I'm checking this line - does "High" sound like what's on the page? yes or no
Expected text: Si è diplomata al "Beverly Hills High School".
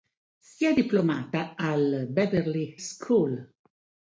no